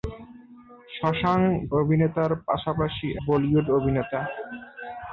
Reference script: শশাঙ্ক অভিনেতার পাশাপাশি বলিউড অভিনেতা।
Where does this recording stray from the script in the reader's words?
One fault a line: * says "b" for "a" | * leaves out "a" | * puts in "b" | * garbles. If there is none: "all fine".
all fine